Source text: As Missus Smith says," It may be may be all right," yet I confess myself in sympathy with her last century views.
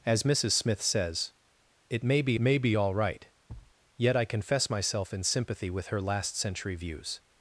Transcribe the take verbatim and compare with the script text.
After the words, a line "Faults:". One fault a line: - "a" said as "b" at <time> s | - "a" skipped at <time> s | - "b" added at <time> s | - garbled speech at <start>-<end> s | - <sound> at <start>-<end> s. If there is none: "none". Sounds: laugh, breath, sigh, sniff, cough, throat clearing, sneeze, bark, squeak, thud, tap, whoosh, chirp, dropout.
As Missus Smith says," It may be may be all right," yet I confess myself in sympathy with her last century views.
Faults:
- thud at 3.5-3.8 s